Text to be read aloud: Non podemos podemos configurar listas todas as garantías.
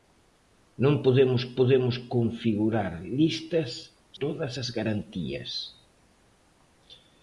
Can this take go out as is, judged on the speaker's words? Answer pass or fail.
pass